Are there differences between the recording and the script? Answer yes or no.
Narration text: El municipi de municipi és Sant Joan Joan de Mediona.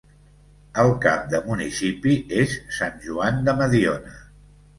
yes